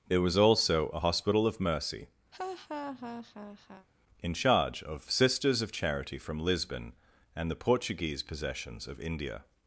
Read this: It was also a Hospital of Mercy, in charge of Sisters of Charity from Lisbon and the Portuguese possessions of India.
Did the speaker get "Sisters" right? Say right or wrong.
right